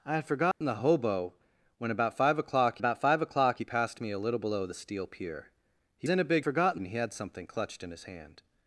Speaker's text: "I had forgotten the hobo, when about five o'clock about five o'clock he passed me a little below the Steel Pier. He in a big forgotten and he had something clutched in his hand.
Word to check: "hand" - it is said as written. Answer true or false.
true